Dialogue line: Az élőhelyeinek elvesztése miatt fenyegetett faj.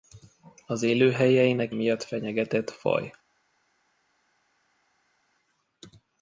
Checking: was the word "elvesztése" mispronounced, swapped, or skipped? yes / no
yes